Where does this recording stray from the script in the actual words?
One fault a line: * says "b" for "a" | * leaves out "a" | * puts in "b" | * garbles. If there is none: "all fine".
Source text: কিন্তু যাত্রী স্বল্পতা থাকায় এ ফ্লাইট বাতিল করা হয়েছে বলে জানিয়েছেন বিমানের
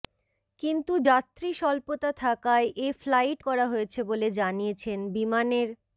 * leaves out "বাতিল"